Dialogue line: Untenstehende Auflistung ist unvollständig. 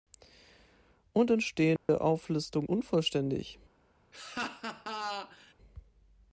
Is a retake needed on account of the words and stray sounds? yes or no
yes